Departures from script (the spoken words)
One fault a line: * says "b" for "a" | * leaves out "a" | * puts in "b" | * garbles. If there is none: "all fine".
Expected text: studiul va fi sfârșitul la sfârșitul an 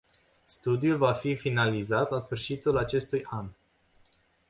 * says "finalizat" for "sfârșitul"
* puts in "acestui"